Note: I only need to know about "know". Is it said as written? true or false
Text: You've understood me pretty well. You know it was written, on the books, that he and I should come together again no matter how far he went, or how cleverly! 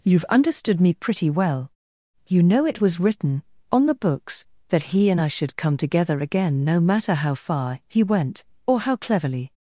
true